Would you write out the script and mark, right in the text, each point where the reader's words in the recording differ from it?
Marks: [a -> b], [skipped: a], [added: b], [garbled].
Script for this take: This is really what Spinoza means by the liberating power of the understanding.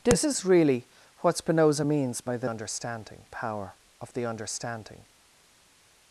This is really what Spinoza means by the [liberating -> understanding] power of the understanding.